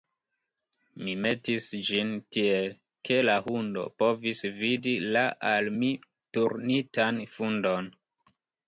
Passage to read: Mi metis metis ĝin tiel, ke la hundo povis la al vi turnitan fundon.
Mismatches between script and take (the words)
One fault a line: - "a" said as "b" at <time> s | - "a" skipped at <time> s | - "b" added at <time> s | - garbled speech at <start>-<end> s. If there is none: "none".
- "metis" skipped at 1.7 s
- "vidi" added at 4.6 s
- "vi" said as "mi" at 5.8 s